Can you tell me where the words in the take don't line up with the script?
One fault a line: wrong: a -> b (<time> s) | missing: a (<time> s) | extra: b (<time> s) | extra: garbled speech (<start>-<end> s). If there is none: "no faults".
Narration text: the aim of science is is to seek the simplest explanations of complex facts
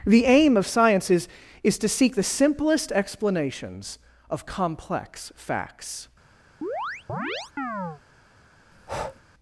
no faults